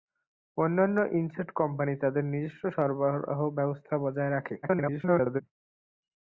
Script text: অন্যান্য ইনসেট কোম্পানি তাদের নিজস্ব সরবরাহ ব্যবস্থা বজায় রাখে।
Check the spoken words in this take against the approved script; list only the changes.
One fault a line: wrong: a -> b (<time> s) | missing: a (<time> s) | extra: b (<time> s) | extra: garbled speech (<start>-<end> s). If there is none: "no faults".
extra: garbled speech (4.6-5.4 s)